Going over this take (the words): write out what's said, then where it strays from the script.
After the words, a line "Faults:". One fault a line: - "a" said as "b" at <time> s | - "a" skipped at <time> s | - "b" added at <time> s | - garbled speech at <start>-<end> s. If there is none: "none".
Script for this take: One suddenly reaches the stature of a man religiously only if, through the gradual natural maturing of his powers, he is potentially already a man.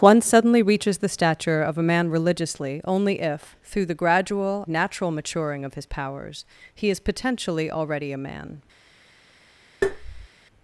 One suddenly reaches the stature of a man religiously only if, through the gradual natural maturing of his powers, he is potentially already a man.
Faults:
none